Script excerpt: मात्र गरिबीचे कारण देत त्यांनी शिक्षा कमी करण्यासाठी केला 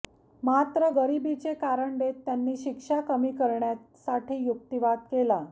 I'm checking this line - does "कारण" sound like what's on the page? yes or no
yes